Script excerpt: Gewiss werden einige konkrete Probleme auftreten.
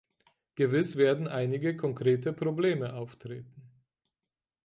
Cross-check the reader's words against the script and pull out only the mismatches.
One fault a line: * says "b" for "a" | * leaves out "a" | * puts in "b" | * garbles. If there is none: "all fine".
all fine